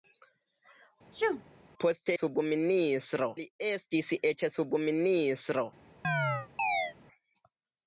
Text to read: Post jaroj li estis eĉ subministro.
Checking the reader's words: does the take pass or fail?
fail